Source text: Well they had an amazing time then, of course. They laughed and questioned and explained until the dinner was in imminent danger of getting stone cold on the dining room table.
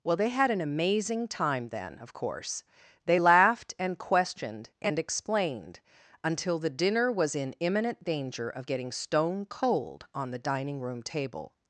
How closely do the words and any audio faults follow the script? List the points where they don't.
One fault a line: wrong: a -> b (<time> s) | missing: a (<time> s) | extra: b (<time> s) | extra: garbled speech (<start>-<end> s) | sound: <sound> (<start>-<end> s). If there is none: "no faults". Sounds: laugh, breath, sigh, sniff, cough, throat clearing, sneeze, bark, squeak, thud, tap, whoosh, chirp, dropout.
no faults